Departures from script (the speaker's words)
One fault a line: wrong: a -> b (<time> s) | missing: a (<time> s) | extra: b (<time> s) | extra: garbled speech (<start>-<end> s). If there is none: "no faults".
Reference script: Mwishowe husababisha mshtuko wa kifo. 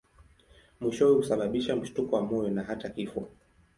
extra: moyo na hata (2.2 s)